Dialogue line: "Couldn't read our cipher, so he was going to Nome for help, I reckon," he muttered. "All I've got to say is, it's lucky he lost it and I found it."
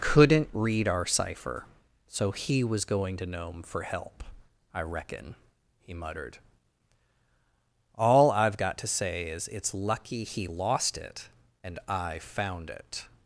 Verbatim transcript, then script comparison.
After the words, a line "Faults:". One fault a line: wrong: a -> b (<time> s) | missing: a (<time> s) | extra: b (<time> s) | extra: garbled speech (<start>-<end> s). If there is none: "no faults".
"Couldn't read our cipher, so he was going to Nome for help, I reckon," he muttered. "All I've got to say is, it's lucky he lost it and I found it."
Faults:
no faults